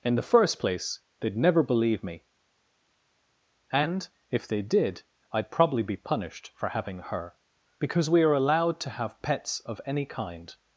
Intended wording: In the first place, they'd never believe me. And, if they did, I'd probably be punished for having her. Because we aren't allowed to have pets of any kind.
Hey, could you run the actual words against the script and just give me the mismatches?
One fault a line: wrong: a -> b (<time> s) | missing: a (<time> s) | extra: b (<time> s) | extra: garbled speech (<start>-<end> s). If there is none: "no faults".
wrong: aren't -> are (8.2 s)